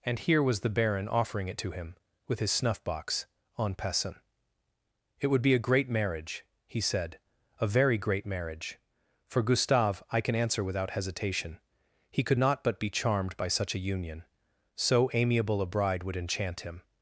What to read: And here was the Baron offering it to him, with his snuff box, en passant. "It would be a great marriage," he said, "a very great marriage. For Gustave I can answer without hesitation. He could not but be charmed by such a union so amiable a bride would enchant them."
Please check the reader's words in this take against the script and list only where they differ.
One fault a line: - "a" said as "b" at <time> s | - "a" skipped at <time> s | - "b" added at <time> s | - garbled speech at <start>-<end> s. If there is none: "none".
- "them" said as "him" at 16.6 s